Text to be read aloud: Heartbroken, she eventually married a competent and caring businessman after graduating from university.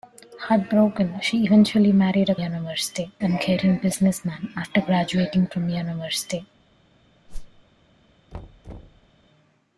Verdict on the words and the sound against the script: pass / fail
fail